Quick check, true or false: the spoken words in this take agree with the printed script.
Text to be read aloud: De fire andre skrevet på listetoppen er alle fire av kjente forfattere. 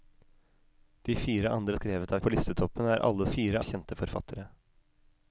true